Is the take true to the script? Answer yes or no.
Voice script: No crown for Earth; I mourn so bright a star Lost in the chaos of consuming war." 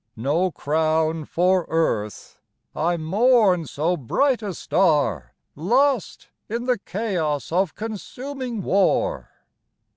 yes